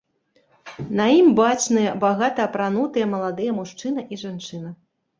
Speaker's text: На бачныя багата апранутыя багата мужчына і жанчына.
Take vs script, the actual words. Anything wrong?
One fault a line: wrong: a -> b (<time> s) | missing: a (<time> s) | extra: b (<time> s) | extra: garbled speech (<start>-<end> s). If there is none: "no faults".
extra: ім (1.2 s)
wrong: багата -> маладыя (3.2 s)